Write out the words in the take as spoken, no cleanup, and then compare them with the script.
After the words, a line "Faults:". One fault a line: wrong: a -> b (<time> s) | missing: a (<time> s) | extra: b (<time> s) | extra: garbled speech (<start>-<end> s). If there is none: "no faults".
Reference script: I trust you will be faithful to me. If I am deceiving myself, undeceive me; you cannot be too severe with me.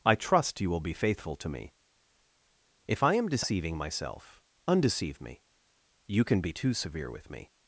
I trust you will be faithful to me. If I am deceiving myself, undeceive me; you can be too severe with me.
Faults:
wrong: cannot -> can (6.2 s)